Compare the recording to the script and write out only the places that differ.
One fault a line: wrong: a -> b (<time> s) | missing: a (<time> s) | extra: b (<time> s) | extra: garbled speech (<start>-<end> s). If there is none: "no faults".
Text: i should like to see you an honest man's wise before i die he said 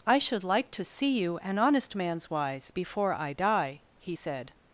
no faults